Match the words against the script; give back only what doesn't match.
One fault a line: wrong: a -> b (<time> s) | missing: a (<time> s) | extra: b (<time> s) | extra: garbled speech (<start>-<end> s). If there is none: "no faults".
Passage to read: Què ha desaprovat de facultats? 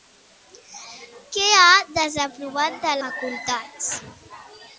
no faults